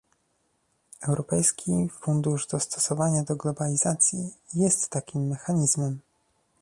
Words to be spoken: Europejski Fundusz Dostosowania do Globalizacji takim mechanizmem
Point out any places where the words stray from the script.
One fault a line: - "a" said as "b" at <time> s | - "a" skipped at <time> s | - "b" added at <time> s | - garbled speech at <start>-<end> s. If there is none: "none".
- "jest" added at 4.5 s